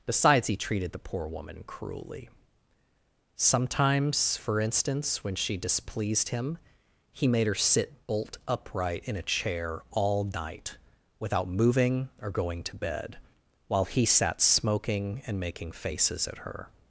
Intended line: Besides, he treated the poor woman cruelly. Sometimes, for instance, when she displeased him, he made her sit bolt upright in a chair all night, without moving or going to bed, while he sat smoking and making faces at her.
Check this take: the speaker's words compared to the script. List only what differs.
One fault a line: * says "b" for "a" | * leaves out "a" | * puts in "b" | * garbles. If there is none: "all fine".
all fine